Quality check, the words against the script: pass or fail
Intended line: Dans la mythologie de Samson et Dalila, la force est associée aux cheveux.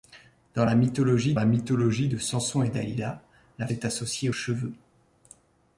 fail